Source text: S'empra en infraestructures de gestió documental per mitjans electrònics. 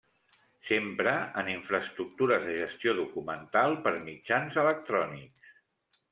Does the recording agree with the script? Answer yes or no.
yes